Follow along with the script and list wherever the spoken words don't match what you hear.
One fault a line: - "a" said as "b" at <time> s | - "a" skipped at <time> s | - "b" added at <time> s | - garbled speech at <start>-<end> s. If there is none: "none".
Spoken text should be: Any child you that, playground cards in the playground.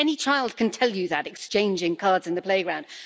- "can tell" added at 0.6 s
- "playground" said as "exchanging" at 1.3 s